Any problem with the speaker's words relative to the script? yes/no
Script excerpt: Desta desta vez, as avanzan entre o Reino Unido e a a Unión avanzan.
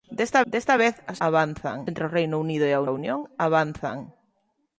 no